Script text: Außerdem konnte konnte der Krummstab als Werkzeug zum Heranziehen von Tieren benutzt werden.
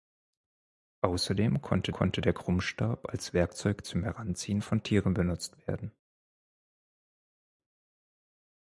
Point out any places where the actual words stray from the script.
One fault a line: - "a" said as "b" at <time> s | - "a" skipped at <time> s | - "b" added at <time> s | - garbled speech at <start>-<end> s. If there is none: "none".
none